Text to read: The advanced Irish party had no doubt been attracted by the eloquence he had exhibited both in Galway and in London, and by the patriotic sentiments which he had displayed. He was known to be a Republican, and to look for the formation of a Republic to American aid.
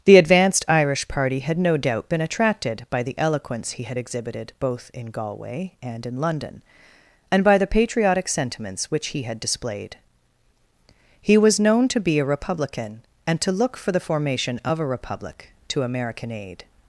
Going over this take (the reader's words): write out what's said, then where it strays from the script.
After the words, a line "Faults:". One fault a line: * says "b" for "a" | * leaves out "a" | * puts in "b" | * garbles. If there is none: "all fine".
The advanced Irish party had no doubt been attracted by the eloquence he had exhibited both in Galway and in London, and by the patriotic sentiments which he had displayed. He was known to be a Republican, and to look for the formation of a Republic to American aid.
Faults:
all fine